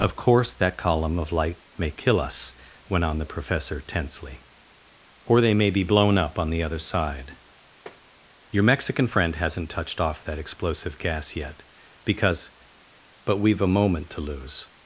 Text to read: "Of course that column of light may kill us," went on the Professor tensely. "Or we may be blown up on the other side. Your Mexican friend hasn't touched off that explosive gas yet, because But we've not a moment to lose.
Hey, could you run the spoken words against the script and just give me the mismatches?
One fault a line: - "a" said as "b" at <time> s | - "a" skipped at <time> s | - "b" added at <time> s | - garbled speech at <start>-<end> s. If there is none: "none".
- "we" said as "they" at 5.4 s
- "not" skipped at 13.6 s